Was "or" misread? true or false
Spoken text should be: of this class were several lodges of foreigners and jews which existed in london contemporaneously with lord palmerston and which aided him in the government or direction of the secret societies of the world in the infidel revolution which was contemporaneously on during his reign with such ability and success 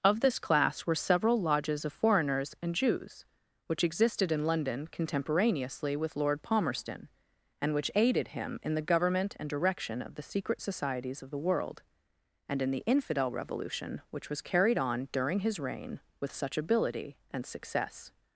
true